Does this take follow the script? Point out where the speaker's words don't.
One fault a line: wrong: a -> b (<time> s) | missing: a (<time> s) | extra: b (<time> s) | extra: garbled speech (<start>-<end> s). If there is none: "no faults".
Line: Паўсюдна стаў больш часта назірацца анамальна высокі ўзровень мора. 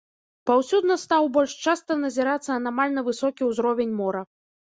no faults